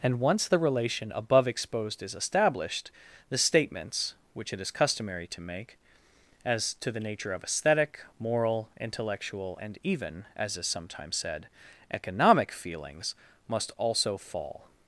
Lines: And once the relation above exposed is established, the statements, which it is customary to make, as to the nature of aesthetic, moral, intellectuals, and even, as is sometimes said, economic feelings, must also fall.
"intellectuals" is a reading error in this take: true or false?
true